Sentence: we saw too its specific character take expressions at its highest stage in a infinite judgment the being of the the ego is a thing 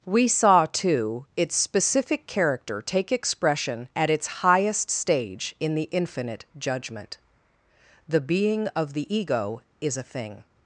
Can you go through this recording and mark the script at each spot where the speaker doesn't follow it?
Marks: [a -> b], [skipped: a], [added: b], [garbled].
we saw too its specific character take [expressions -> expression] at its highest stage in [a -> the] infinite judgment the being of the [skipped: the] ego is a thing